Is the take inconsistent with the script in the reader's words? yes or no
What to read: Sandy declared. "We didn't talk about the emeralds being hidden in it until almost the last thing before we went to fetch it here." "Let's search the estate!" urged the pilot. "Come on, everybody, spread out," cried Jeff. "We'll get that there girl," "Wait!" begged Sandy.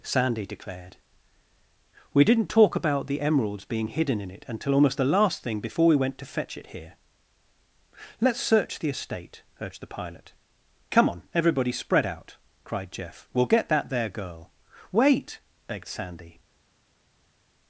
no